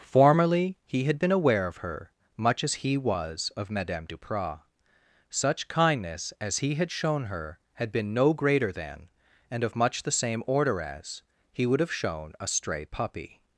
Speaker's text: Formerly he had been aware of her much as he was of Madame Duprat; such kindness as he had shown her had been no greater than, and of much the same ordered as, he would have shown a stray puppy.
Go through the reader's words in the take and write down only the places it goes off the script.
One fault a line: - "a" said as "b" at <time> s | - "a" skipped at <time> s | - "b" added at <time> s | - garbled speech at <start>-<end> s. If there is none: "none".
- "ordered" said as "order" at 10.5 s